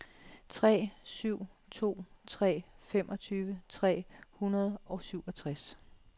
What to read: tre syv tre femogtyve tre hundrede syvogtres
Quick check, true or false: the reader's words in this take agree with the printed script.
false